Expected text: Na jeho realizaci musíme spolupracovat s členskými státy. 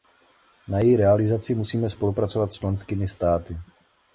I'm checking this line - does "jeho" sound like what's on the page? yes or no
no